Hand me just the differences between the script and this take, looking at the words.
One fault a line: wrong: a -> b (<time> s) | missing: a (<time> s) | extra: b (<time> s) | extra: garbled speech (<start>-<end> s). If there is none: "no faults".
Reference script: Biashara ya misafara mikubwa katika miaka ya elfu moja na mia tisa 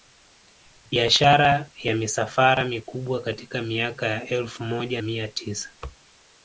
missing: na (5.0 s)